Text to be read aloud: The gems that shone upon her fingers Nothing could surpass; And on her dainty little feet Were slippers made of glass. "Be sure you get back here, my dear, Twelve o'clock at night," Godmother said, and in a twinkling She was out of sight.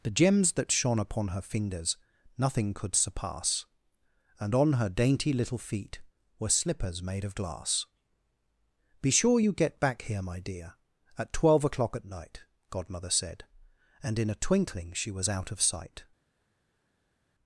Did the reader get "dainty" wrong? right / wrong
right